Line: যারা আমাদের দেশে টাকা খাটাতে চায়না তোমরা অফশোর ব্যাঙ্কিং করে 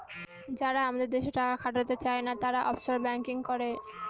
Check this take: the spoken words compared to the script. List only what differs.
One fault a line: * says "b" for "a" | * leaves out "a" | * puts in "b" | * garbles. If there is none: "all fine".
* says "তারা" for "তোমরা"